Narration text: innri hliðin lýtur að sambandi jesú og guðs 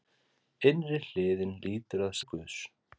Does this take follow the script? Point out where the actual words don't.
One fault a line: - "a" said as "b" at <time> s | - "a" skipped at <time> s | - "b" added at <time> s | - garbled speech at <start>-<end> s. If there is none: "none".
- "sambandi jesú" skipped at 2.2 s